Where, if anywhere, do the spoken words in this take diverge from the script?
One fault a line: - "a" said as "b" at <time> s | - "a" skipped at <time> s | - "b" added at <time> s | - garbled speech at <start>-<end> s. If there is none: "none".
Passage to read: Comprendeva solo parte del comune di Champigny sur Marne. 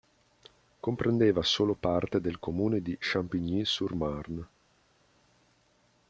none